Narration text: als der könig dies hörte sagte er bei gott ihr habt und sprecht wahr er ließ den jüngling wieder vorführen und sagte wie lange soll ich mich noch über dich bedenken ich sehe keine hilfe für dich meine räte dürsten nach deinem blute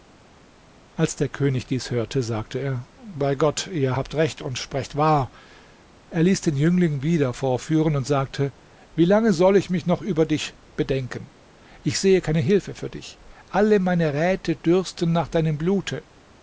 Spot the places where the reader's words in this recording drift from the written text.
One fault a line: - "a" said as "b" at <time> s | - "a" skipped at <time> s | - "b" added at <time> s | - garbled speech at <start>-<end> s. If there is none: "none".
- "recht" added at 4.1 s
- "alle" added at 13.5 s